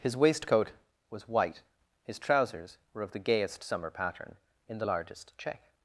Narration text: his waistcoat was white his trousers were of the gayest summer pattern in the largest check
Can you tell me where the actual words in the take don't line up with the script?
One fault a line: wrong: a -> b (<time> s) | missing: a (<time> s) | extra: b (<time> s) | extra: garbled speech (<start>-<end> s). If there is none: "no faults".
no faults